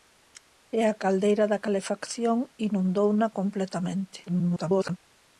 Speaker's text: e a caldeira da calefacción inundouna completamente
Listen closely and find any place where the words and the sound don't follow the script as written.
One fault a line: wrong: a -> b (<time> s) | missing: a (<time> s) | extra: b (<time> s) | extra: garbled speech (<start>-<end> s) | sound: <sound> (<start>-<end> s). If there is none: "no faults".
extra: garbled speech (4.3-5.0 s)